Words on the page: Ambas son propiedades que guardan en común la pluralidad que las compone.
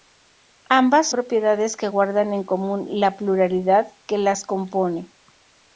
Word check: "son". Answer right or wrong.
wrong